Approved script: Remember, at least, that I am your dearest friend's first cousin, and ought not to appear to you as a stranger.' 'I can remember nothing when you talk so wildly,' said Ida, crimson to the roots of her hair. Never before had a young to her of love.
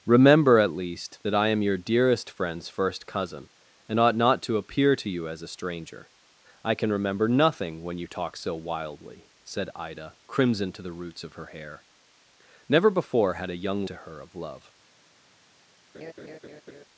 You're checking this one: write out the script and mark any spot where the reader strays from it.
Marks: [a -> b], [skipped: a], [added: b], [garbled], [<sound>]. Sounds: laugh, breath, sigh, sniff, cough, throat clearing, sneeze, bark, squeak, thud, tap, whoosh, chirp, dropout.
Remember, at least, that I am your dearest friend's first cousin, and ought not to appear to you as a stranger.' 'I can remember nothing when you talk so wildly,' said Ida, crimson to the roots of her hair. Never before had a young to her of love. [laugh]